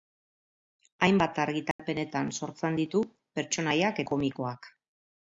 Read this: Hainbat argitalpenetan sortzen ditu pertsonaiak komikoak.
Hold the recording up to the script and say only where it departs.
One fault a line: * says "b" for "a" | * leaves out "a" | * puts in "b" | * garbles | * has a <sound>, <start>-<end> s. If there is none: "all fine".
* has a dropout, 1.7-1.8 s